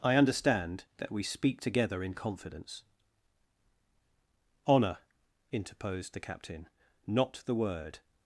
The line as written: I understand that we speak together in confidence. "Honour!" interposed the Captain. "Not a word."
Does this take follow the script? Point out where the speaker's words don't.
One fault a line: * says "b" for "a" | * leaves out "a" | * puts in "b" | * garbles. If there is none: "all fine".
* says "the" for "a"